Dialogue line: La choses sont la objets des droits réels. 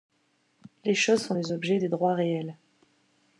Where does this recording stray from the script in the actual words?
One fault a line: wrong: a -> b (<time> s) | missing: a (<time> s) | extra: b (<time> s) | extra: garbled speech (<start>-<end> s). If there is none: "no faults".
wrong: La -> Les (0.8 s)
wrong: la -> les (1.3 s)